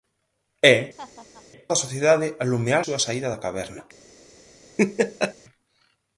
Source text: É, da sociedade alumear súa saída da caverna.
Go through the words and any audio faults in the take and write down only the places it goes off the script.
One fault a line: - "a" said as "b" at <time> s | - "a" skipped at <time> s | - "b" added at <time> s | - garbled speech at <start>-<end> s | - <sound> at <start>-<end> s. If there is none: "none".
- laugh at 1.0-1.5 s
- laugh at 4.8-5.3 s